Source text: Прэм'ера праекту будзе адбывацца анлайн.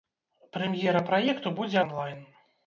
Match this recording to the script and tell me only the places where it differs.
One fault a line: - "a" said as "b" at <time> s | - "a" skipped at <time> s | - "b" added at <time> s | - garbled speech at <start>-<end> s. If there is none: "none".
- "адбывацца" skipped at 1.8 s